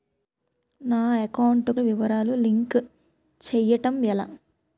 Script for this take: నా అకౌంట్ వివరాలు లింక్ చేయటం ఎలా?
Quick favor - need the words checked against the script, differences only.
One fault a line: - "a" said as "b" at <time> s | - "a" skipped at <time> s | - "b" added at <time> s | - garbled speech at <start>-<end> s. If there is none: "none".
none